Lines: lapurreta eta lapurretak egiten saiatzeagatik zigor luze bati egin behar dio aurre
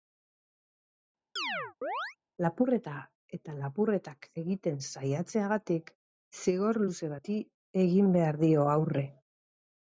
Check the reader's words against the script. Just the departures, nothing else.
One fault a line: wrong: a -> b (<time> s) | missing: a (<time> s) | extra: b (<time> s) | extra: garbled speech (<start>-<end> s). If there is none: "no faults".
no faults